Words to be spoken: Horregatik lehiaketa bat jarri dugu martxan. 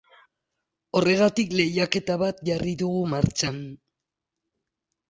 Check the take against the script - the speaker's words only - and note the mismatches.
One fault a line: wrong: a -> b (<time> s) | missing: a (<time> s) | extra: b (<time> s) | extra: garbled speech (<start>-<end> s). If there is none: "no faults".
no faults